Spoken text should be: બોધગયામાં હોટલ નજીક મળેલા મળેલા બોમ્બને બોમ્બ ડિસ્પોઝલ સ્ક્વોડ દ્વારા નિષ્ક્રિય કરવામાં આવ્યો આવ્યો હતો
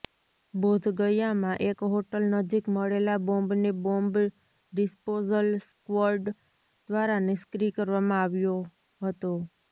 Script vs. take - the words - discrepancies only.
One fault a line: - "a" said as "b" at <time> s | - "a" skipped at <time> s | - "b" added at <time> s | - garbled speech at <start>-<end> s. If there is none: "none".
- "એક" added at 1.6 s
- "મળેલા" skipped at 3.2 s
- "આવ્યો" skipped at 8.6 s